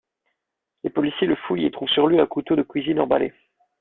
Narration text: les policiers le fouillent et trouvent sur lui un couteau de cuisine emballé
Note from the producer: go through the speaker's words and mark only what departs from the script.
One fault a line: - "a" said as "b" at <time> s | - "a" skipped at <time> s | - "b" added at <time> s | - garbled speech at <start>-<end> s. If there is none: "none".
none